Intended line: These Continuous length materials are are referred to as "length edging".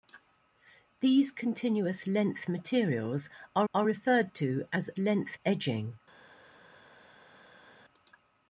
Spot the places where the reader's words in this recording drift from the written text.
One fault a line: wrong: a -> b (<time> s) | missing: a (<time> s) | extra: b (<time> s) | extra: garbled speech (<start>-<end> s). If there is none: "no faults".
no faults